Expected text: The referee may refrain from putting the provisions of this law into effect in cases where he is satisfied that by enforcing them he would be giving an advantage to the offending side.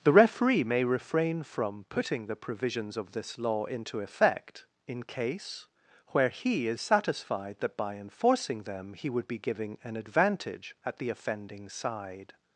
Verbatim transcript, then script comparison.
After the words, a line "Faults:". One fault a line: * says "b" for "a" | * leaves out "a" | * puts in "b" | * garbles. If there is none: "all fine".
The referee may refrain from putting the provisions of this law into effect in case where he is satisfied that by enforcing them he would be giving an advantage at the offending side.
Faults:
* says "case" for "cases"
* says "at" for "to"